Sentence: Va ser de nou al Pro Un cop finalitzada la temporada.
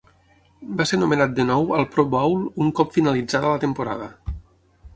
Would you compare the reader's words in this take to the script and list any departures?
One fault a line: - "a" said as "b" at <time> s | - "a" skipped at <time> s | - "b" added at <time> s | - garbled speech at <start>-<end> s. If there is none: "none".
- "nomenat" added at 1.0 s
- "Bowl" added at 2.1 s